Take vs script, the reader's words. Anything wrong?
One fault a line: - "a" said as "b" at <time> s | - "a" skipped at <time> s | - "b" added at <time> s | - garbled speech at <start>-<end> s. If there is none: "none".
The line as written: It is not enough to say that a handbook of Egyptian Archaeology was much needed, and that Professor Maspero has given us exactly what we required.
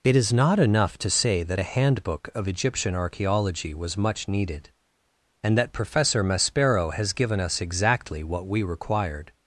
none